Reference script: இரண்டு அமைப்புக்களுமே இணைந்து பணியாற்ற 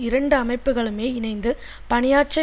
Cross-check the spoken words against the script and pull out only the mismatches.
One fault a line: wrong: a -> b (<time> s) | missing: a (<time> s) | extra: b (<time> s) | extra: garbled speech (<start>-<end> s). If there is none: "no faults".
no faults